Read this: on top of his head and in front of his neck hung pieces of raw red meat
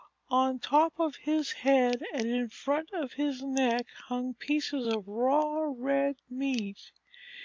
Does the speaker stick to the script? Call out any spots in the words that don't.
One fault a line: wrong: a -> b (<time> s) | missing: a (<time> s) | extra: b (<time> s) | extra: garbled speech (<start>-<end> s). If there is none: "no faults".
no faults